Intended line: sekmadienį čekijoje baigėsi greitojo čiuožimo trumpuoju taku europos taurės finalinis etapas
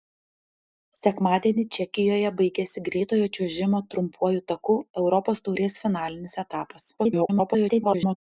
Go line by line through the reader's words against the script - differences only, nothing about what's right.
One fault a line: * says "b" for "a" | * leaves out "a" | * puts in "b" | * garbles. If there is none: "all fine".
* garbles